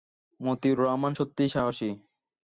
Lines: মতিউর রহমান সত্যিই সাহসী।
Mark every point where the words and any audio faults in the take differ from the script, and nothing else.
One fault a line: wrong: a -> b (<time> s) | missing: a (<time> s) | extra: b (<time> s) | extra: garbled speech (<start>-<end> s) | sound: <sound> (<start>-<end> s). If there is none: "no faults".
no faults